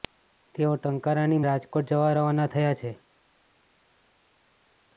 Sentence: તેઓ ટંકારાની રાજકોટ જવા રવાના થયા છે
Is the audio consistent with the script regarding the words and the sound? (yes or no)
yes